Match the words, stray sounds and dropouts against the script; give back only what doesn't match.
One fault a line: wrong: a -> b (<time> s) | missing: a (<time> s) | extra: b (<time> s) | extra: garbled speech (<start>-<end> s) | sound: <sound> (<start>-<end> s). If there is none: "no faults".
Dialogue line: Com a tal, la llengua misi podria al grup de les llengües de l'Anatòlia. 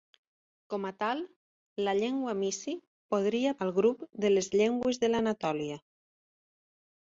no faults